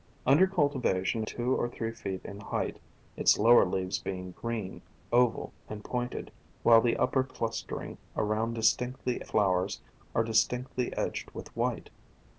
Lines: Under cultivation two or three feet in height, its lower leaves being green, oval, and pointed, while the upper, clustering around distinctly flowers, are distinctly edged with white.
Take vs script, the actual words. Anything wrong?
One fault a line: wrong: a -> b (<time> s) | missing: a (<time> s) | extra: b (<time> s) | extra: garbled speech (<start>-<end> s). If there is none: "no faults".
no faults